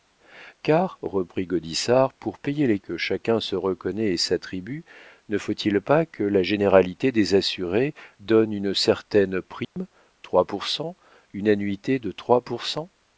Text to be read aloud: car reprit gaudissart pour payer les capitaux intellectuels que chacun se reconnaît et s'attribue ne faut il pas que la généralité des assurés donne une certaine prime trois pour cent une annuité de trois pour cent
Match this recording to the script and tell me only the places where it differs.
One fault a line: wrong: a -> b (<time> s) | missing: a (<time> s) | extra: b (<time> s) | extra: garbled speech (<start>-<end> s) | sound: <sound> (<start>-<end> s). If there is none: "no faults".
missing: capitaux intellectuels (2.8 s)
sound: dropout (9.6-9.8 s)